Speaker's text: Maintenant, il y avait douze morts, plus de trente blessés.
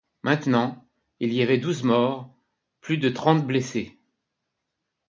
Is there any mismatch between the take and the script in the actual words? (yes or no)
no